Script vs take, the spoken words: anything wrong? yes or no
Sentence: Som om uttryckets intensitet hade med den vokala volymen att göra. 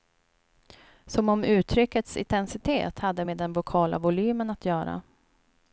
no